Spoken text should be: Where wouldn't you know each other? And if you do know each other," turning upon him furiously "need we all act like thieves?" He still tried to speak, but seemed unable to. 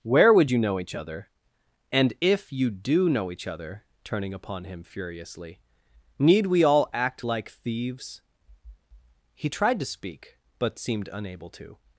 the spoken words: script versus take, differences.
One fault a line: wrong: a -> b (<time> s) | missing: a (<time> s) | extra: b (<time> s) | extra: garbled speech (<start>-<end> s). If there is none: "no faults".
wrong: wouldn't -> would (0.3 s)
missing: still (9.5 s)